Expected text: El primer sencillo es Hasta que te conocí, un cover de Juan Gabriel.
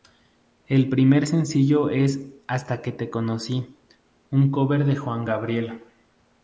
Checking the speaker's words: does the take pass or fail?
pass